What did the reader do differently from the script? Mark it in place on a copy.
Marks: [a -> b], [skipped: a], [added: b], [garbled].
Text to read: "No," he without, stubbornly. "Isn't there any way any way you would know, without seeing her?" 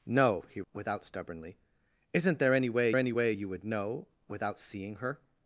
"No," he without, stubbornly. "Isn't there any way any way you would know, without seeing her?"